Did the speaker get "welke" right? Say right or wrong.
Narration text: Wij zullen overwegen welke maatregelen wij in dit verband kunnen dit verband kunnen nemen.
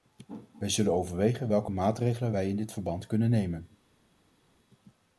right